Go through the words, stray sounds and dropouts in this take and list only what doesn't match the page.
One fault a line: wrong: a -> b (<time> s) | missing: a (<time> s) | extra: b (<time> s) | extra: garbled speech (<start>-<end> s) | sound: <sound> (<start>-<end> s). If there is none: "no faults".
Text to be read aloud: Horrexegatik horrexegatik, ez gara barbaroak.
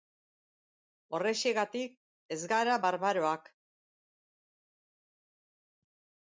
missing: horrexegatik (1.9 s)